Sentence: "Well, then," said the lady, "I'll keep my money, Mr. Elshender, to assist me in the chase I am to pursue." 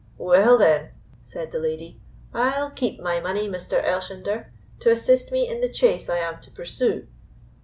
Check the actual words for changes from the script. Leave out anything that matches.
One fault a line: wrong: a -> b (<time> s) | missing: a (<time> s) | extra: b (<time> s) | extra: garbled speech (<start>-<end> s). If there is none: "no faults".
no faults